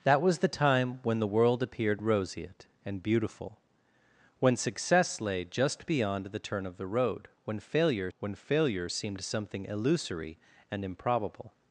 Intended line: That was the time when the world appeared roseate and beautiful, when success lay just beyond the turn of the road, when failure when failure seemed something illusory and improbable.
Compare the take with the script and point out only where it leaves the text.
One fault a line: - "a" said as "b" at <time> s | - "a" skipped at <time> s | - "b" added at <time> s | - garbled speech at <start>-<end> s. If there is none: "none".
none